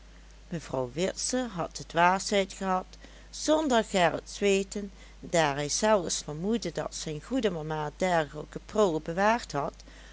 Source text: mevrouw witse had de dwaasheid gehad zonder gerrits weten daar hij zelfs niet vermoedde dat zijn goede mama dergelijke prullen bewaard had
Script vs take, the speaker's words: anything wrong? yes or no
yes